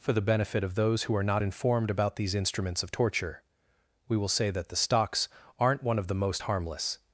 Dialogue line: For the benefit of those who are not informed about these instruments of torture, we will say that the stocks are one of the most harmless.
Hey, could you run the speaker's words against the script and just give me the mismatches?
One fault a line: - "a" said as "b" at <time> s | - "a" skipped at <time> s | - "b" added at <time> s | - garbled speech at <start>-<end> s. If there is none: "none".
- "are" said as "aren't" at 5.6 s